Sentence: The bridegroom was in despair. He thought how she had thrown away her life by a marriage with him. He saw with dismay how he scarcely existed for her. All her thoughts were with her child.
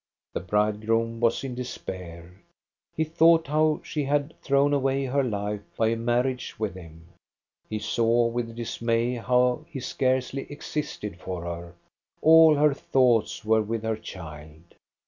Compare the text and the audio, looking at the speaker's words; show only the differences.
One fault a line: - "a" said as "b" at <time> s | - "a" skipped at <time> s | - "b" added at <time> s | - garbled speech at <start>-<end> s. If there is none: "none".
none